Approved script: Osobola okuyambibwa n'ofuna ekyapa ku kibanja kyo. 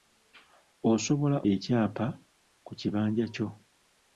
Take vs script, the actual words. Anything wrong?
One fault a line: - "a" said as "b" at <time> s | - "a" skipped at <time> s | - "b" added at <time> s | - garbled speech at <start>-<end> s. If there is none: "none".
- "okuyambibwa n'ofuna" skipped at 1.4 s